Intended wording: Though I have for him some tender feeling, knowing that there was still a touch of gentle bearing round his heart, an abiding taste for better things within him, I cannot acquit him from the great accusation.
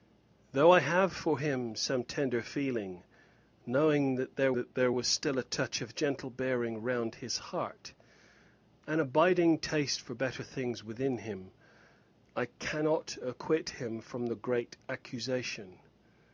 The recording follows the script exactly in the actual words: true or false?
false